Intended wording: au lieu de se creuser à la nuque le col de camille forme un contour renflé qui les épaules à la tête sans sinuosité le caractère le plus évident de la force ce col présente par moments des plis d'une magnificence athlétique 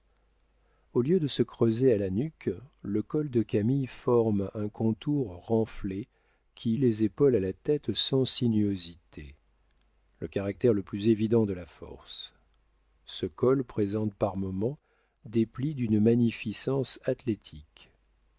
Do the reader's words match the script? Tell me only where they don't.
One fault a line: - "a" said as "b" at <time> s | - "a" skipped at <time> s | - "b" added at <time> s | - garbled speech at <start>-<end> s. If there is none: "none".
none